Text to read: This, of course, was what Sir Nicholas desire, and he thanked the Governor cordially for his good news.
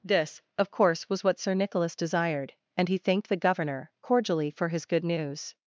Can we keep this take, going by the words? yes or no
no